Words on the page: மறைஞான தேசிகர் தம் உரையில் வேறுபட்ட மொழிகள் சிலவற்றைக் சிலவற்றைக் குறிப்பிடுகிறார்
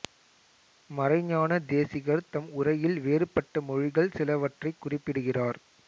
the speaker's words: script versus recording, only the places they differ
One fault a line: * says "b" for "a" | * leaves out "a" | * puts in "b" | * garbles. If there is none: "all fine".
* leaves out "சிலவற்றைக்"